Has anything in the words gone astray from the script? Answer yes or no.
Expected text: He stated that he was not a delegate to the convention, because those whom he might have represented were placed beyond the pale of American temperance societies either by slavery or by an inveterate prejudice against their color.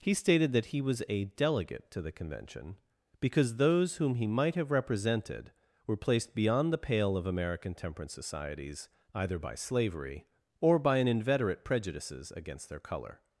yes